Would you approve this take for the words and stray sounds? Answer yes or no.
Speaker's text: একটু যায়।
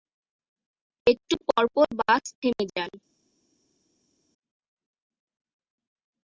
no